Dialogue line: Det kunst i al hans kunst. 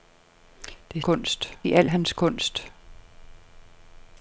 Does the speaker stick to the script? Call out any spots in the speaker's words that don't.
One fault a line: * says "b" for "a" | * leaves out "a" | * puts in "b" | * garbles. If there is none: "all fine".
all fine